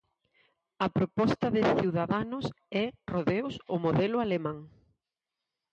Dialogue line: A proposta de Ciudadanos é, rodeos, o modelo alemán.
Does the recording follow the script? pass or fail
pass